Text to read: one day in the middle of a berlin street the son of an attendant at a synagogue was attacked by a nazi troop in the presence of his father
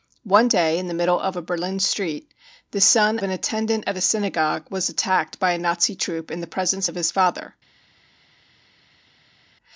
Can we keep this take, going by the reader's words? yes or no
no